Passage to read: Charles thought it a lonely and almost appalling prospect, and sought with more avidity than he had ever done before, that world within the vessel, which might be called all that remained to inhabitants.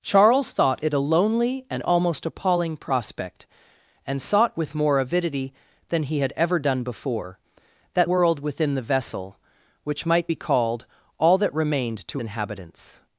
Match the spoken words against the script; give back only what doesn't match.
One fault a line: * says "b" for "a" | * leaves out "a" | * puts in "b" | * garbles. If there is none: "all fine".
all fine